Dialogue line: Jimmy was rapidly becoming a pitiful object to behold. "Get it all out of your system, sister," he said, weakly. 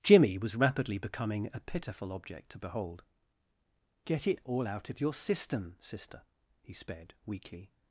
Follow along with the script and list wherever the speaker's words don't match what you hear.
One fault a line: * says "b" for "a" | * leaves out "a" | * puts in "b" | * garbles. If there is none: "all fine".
* says "sped" for "said"